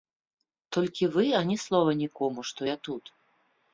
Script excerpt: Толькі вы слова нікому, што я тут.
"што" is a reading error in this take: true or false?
false